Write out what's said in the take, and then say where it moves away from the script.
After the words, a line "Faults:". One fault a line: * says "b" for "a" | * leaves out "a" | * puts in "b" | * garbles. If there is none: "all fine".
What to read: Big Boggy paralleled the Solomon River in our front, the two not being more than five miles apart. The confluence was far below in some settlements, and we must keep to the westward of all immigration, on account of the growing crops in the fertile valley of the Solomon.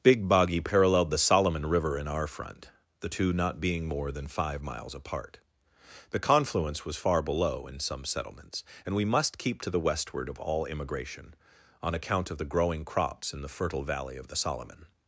Big Boggy paralleled the Solomon River in our front, the two not being more than five miles apart. The confluence was far below in some settlements, and we must keep to the westward of all immigration, on account of the growing crops in the fertile valley of the Solomon.
Faults:
all fine